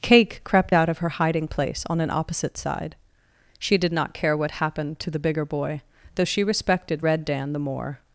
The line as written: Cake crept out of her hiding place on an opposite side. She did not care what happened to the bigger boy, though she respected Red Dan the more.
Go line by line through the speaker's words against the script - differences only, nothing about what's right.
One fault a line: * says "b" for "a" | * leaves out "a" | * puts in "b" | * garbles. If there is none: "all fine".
all fine